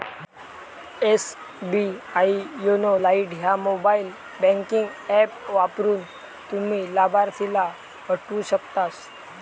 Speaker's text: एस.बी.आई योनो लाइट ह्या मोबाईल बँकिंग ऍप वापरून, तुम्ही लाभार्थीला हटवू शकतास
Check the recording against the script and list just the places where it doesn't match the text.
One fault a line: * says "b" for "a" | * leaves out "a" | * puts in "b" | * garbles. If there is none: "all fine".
all fine